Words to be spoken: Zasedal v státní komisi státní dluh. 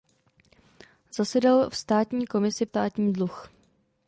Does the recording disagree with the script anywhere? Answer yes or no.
no